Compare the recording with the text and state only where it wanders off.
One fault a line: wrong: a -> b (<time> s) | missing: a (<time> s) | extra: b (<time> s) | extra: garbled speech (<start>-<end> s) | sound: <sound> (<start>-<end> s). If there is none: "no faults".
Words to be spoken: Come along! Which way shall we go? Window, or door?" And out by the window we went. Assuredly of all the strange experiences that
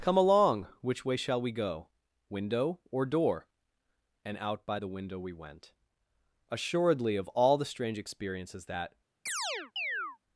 sound: chirp (9.3-10.2 s)